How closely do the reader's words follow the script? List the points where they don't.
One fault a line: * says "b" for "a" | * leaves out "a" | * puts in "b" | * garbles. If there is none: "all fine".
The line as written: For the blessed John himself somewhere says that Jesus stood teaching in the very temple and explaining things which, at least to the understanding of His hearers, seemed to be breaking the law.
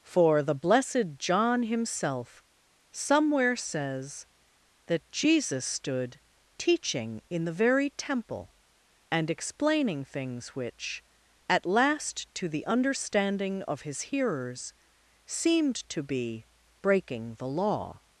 * says "last" for "least"